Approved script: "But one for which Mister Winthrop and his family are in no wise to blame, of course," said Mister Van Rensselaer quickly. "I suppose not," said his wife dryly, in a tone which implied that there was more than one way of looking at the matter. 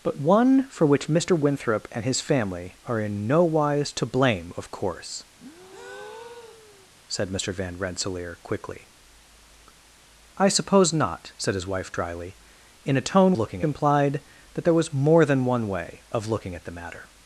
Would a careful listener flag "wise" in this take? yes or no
no